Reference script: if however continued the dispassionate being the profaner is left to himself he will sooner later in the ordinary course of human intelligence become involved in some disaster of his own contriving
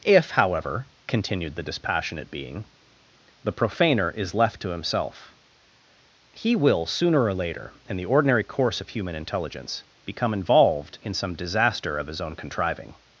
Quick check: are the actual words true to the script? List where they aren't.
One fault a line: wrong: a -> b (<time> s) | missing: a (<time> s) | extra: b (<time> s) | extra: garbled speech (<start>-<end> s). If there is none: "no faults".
extra: or (7.2 s)